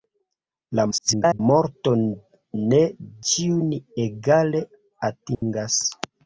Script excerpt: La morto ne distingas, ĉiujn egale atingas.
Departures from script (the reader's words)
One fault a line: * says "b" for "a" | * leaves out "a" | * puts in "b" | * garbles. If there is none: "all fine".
* garbles
* leaves out "distingas"